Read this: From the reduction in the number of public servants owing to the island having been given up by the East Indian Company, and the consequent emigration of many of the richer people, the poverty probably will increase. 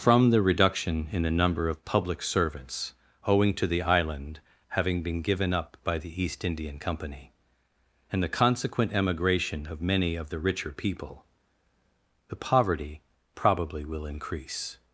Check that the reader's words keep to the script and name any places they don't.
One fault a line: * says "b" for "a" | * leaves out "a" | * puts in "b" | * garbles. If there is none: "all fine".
all fine